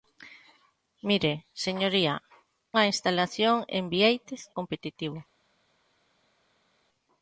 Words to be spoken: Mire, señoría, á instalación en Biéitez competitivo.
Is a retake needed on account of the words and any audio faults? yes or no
no